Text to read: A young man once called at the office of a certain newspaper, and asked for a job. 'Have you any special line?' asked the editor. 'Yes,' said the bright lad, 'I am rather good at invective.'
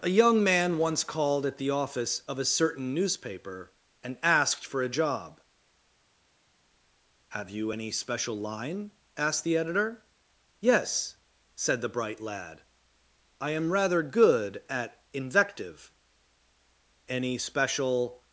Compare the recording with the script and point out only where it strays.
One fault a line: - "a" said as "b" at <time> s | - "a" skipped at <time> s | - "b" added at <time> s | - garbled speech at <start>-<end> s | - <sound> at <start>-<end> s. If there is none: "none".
- "Any special" added at 17.1 s